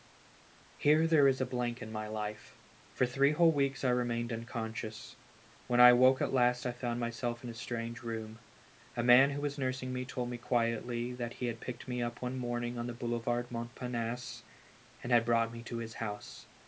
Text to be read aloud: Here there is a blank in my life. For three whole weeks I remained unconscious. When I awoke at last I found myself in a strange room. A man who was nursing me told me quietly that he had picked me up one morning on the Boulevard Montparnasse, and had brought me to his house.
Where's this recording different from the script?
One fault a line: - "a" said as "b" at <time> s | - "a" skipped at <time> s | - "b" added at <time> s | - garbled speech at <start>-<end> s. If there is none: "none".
none